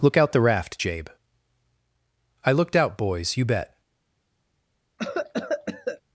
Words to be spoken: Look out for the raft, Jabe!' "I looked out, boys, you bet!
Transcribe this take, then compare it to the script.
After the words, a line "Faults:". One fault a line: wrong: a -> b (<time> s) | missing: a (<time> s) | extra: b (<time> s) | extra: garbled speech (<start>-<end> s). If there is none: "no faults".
Look out the raft, Jabe!' "I looked out, boys, you bet!
Faults:
missing: for (0.3 s)